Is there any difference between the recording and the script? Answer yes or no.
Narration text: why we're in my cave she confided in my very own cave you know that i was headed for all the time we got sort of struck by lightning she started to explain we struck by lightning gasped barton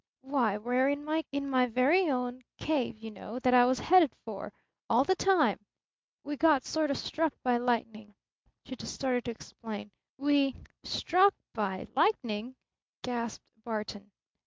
yes